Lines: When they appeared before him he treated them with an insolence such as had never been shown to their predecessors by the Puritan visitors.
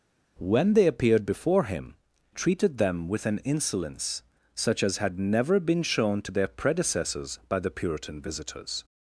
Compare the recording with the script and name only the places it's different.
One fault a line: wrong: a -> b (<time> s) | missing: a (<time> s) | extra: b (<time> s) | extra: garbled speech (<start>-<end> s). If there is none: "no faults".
missing: he (1.9 s)